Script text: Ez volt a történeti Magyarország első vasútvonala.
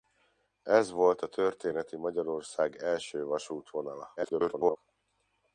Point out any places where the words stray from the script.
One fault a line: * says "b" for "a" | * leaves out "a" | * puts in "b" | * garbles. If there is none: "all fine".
* garbles